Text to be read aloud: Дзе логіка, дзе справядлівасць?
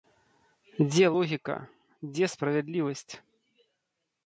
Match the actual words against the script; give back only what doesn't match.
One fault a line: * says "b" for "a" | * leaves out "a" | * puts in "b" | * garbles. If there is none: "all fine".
all fine